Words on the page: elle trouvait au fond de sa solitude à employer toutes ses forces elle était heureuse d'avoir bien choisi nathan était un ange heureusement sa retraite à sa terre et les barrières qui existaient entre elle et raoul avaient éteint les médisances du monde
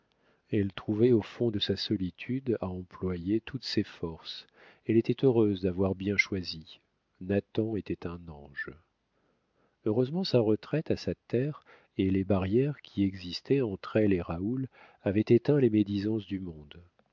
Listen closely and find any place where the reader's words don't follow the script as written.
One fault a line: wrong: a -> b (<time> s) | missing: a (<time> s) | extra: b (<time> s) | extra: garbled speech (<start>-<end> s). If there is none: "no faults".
no faults